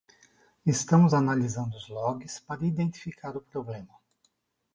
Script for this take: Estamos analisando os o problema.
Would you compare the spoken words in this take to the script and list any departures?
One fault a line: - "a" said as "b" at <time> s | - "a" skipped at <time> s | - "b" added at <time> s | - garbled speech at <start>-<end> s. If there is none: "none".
- "logs para identificar" added at 1.9 s